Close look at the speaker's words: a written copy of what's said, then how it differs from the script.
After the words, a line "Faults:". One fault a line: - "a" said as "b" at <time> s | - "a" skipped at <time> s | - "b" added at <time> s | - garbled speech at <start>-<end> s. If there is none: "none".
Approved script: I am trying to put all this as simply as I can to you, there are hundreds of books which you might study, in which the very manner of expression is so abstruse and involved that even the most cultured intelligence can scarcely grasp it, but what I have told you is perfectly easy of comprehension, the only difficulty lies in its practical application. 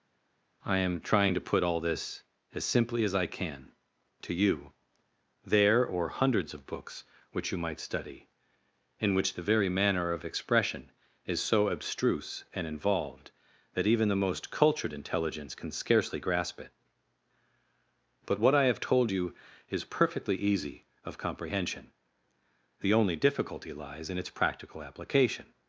I am trying to put all this as simply as I can to you, there or hundreds of books which you might study, in which the very manner of expression is so abstruse and involved that even the most cultured intelligence can scarcely grasp it, but what I have told you is perfectly easy of comprehension, the only difficulty lies in its practical application.
Faults:
- "are" said as "or" at 5.8 s